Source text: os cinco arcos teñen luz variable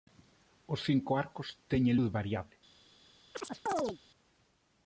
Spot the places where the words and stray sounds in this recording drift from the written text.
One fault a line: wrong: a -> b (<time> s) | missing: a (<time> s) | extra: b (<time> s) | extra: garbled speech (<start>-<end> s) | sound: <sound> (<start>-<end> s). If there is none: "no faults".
sound: chirp (3.3-4.0 s)